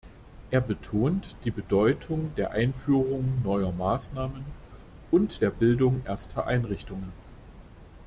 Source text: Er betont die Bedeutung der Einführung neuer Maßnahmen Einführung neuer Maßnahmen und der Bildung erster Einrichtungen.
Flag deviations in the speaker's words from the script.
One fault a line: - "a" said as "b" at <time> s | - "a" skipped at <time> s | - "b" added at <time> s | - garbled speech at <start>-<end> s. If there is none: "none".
- "Einführung neuer Maßnahmen" skipped at 4.4 s